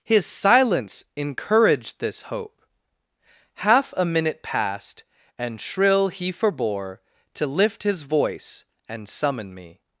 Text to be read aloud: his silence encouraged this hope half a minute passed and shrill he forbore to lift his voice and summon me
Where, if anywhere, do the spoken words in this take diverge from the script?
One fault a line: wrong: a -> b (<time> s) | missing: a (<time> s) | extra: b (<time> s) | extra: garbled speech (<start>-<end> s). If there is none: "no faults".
no faults